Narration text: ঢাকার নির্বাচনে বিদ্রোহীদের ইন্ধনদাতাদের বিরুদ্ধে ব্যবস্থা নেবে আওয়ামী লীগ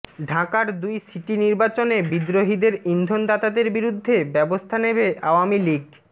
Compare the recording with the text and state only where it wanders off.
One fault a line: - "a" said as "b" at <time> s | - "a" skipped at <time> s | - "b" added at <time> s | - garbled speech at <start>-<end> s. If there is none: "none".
- "দুই সিটি" added at 0.8 s